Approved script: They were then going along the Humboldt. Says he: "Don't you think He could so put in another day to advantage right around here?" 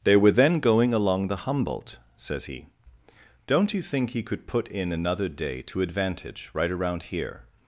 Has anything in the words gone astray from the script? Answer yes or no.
yes